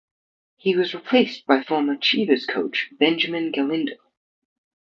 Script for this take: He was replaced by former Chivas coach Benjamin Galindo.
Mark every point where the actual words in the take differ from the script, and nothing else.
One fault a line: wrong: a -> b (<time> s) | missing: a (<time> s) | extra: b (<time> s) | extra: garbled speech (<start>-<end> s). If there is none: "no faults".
no faults